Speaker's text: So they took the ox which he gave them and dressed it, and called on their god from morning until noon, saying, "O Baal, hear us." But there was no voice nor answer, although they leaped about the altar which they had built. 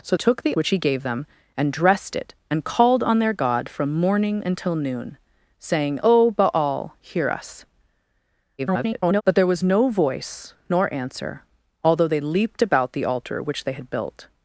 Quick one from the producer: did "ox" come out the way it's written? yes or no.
no